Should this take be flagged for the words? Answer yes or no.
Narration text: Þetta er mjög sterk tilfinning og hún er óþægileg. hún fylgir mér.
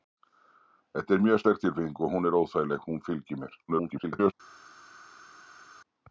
yes